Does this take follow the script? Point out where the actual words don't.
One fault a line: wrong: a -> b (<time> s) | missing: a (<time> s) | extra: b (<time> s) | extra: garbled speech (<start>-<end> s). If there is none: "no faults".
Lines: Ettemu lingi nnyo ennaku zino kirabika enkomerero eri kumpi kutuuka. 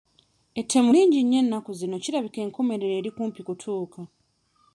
no faults